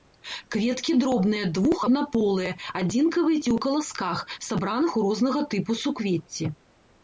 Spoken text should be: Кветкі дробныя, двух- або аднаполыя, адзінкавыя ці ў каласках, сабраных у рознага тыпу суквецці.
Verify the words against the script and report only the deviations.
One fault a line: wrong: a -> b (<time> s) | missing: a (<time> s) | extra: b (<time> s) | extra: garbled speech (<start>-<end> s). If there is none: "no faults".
missing: або (1.8 s)